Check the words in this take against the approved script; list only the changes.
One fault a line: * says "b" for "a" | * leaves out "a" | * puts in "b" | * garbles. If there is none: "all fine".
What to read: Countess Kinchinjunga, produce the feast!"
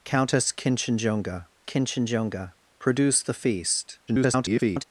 * puts in "Kinchinjunga"
* garbles